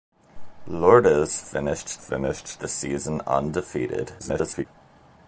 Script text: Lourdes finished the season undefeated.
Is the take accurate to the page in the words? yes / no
no